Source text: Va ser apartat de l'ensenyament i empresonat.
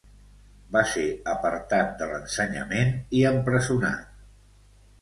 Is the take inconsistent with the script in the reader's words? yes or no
no